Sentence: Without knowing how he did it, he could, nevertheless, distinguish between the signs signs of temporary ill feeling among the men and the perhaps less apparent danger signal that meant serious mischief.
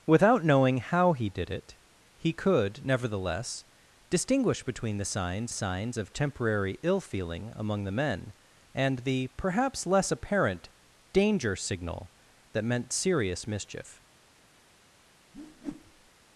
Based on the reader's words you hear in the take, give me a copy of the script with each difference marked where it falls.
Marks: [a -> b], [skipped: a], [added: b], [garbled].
Without knowing how he did it, he could, nevertheless, distinguish between the signs signs of temporary ill feeling among the men and the perhaps less apparent danger signal that meant serious mischief.